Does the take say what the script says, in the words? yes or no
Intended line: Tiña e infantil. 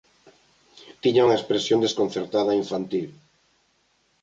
no